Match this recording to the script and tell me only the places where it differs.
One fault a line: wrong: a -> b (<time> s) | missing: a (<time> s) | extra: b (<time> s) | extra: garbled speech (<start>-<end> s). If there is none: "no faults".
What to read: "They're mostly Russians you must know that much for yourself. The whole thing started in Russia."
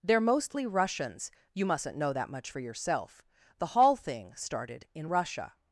wrong: must -> mustn't (1.6 s)
wrong: whole -> hall (3.7 s)